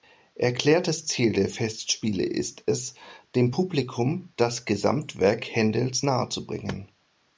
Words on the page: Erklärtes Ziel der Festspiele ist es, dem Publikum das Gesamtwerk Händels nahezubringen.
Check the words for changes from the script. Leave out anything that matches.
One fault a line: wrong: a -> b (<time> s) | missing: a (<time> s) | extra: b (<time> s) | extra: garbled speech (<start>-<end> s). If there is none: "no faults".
no faults